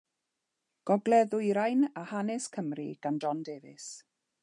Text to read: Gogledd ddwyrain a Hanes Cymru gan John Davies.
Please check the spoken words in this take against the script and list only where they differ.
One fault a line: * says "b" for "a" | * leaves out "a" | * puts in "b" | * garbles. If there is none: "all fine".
all fine